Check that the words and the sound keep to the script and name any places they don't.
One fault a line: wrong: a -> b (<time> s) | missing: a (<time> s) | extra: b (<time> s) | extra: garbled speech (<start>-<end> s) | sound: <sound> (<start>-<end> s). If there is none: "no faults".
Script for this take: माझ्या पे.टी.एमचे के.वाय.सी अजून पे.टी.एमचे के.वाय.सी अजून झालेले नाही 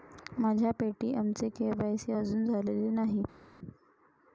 missing: पे.टी.एमचे के.वाय.सी अजून (2.4 s)